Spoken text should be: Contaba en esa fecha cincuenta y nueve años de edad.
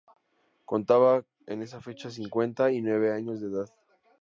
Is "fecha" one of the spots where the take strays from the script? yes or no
no